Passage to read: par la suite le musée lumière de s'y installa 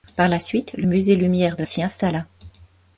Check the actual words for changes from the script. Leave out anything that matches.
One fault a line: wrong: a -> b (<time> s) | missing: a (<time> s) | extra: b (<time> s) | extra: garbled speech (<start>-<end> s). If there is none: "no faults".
no faults